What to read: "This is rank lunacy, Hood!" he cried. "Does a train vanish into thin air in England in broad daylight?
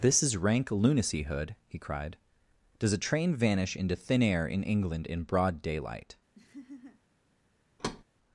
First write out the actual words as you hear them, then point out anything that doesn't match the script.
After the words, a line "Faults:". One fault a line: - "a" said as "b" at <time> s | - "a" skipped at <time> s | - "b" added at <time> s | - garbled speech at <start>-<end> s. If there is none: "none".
"This is rank lunacy, Hood!" he cried. "Does a train vanish into thin air in England in broad daylight?
Faults:
none